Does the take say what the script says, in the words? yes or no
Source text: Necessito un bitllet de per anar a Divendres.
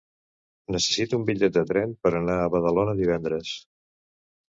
no